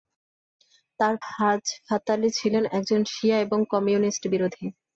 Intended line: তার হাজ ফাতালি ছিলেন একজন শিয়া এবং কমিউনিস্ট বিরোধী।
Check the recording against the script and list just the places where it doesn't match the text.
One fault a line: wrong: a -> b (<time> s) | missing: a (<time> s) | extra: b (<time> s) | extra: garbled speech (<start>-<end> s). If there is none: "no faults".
no faults